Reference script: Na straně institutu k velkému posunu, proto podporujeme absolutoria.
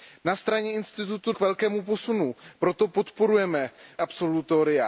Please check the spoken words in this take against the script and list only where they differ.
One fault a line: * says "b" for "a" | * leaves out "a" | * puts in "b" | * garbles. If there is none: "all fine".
all fine